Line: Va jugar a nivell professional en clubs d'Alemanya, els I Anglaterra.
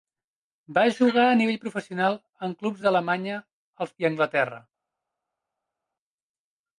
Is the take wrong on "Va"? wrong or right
right